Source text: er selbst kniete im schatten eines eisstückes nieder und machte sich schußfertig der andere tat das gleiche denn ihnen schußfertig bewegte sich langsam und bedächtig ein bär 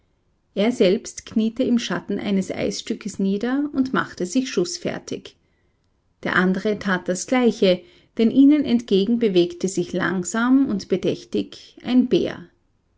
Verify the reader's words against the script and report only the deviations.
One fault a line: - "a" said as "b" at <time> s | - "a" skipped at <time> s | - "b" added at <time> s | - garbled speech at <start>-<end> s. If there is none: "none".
- "schußfertig" said as "entgegen" at 8.7 s